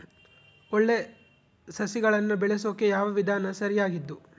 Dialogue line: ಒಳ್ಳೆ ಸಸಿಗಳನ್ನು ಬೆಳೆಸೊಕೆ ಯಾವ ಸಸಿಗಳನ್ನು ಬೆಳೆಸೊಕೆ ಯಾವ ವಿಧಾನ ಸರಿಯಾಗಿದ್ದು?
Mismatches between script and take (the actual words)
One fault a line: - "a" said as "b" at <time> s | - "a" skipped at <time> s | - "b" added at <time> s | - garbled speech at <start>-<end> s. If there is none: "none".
- "ಸಸಿಗಳನ್ನು ಬೆಳೆಸೊಕೆ ಯಾವ" skipped at 3.1 s